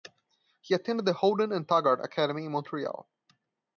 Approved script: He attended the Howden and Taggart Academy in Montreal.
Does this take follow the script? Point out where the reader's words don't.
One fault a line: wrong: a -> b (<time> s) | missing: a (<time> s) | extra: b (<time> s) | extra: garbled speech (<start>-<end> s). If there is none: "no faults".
no faults